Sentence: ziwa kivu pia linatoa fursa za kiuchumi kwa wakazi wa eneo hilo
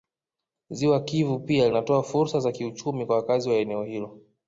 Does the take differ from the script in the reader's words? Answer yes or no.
no